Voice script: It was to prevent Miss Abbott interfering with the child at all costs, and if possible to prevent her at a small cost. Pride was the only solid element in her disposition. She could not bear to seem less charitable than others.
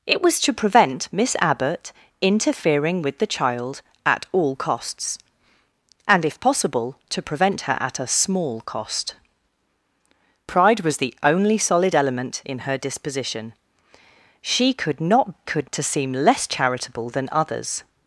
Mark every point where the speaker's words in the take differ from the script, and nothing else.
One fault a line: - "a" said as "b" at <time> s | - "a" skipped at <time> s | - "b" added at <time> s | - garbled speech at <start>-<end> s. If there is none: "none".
- "bear" said as "could" at 15.4 s